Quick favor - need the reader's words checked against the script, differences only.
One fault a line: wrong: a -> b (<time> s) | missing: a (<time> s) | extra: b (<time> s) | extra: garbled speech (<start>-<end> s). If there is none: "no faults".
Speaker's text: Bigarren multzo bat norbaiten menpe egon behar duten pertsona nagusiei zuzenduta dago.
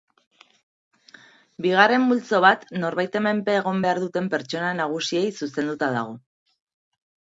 no faults